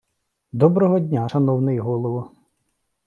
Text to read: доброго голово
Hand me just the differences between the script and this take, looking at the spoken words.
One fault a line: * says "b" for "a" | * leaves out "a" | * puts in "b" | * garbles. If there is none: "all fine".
* puts in "дня шановний"